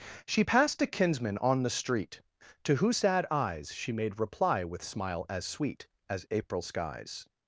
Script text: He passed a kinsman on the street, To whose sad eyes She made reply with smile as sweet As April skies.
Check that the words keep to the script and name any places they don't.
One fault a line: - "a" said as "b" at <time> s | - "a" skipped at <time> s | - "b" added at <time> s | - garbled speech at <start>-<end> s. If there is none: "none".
- "He" said as "She" at 0.3 s